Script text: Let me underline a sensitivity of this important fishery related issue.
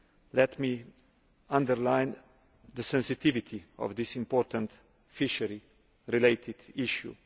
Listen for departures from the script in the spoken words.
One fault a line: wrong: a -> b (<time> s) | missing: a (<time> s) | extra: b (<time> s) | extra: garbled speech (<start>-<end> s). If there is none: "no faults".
wrong: a -> the (2.7 s)